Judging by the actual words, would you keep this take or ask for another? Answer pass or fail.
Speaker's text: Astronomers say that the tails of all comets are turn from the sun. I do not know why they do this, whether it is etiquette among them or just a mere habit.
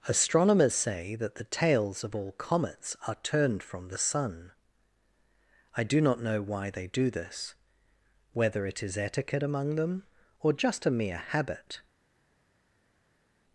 fail